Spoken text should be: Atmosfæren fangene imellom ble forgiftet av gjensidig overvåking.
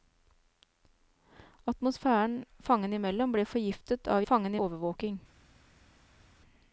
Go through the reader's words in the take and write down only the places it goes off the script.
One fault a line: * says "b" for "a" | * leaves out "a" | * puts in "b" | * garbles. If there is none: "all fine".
* says "fangene" for "gjensidig"